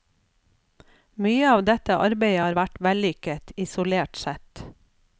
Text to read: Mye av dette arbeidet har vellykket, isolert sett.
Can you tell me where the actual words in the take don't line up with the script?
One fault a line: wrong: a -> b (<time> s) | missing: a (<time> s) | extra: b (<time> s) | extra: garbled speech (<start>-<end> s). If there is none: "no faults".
extra: vært (2.6 s)